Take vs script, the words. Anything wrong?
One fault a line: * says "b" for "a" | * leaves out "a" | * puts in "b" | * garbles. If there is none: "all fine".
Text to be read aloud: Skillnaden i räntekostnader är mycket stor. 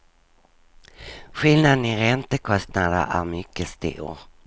all fine